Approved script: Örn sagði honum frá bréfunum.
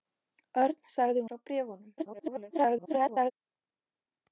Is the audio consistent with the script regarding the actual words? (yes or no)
no